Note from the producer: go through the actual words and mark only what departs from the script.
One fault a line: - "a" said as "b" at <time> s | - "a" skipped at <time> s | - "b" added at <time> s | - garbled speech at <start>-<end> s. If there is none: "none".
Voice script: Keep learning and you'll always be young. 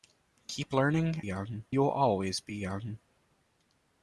- "and" said as "young" at 1.2 s